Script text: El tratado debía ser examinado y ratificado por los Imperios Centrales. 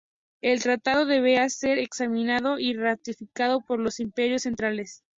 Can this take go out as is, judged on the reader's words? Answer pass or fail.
pass